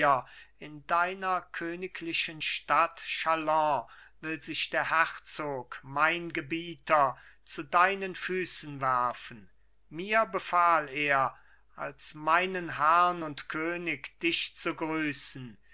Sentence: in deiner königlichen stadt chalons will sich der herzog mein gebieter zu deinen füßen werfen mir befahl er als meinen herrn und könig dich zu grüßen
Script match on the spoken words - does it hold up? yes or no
yes